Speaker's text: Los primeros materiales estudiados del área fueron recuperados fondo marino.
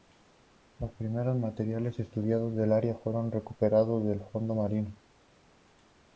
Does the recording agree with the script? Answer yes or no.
no